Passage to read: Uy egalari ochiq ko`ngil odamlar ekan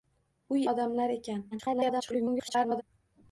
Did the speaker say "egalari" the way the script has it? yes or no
no